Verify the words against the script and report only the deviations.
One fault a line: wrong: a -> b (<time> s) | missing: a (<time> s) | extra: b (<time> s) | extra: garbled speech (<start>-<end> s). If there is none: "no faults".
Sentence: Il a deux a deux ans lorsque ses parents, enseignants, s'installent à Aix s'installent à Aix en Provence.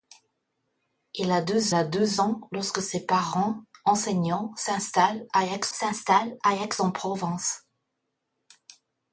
no faults